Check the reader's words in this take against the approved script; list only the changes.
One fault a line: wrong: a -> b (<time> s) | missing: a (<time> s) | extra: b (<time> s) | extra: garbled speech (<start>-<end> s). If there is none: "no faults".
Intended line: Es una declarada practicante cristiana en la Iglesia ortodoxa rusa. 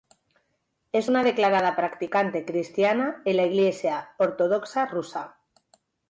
no faults